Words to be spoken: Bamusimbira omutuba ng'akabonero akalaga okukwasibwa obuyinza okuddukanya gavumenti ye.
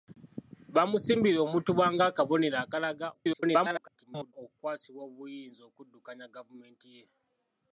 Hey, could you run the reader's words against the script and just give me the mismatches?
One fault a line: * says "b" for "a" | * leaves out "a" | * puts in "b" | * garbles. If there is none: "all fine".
* garbles